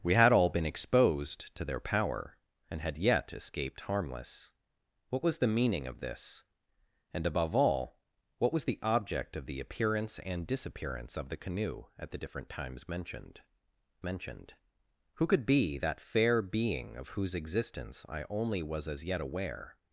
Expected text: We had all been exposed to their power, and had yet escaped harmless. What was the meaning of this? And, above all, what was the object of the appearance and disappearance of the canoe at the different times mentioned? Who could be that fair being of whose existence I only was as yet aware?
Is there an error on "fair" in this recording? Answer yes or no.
no